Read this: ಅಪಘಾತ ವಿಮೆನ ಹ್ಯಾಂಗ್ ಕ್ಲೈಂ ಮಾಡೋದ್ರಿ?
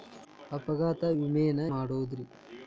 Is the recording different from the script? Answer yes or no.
yes